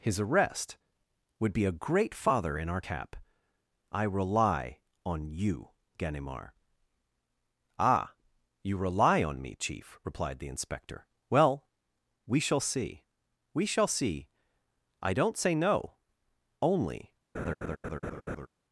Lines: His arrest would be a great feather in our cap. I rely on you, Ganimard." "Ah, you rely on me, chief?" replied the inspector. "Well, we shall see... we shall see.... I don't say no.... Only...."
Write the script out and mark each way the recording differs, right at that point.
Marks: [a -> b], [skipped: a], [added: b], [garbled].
His arrest would be a great [feather -> father] in our cap. I rely on you, Ganimard." "Ah, you rely on me, chief?" replied the inspector. "Well, we shall see... we shall see.... I don't say no.... Only...."